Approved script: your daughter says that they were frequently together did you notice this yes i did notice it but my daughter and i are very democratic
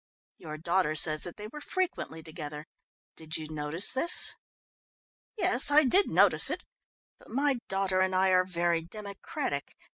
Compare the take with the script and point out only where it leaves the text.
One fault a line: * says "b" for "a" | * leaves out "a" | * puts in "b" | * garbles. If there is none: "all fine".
all fine